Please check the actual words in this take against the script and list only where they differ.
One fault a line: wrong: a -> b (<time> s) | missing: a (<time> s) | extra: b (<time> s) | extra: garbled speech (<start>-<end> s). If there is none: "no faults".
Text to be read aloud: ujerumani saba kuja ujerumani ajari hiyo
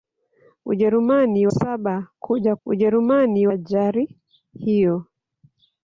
no faults